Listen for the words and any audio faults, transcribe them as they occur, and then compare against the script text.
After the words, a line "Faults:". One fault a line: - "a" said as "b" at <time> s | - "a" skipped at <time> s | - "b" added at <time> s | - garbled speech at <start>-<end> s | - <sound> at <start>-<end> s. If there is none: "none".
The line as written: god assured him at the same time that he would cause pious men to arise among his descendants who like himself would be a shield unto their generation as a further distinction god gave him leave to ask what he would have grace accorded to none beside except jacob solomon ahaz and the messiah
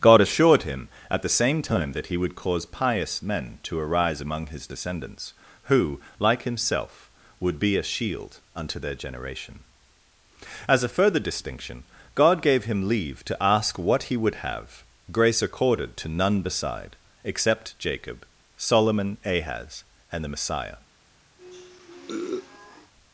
god assured him at the same time that he would cause pious men to arise among his descendants who like himself would be a shield unto their generation as a further distinction god gave him leave to ask what he would have grace accorded to none beside except jacob solomon ahaz and the messiah
Faults:
- sniff at 21.4-22.9 s